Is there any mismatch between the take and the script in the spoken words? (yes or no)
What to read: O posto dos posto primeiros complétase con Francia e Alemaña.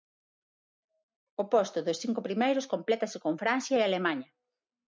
yes